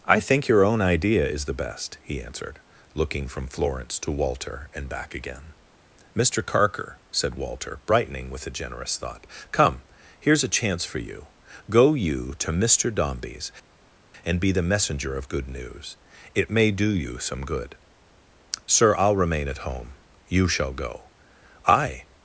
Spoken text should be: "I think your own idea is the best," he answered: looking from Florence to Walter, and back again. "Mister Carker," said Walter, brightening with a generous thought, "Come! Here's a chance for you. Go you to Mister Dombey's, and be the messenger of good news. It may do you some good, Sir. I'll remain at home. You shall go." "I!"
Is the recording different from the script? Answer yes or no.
no